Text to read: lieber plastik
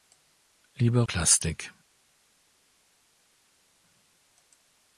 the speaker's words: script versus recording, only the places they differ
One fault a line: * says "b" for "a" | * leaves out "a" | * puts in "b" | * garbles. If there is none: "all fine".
all fine